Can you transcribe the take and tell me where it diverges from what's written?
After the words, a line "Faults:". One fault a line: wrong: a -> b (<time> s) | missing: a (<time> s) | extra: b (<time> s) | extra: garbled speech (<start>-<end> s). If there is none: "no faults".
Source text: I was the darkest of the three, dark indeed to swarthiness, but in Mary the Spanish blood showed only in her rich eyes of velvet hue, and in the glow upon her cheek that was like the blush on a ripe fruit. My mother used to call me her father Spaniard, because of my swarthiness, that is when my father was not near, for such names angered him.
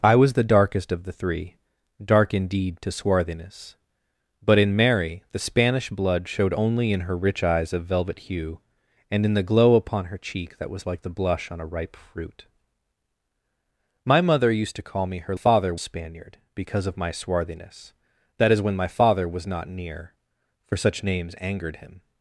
I was the darkest of the three, dark indeed to swarthiness, but in Mary the Spanish blood showed only in her rich eyes of velvet hue, and in the glow upon her cheek that was like the blush on a ripe fruit. My mother used to call me her father Spaniard, because of my swarthiness, that is when my father was not near, for such names angered him.
Faults:
no faults